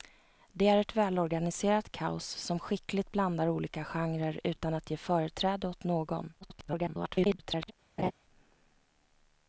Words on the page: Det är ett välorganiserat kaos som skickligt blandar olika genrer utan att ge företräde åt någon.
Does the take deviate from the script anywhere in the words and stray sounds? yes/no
yes